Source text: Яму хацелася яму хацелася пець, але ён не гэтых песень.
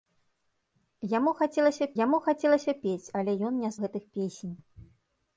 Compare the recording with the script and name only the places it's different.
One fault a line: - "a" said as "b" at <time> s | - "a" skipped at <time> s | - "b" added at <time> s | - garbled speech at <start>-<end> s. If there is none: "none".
none